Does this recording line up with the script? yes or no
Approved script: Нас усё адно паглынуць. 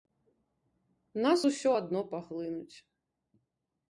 yes